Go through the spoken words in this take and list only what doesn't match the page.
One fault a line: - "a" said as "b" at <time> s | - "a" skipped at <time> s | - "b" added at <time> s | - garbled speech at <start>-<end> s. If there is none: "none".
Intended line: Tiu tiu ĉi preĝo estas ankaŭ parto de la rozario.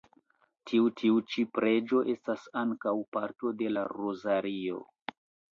none